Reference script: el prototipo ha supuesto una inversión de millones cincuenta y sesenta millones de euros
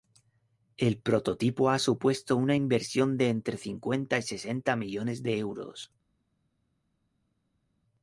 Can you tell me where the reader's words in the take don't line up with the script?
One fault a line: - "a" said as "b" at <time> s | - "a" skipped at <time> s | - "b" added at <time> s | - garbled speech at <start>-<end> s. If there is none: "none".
- "millones" said as "entre" at 3.3 s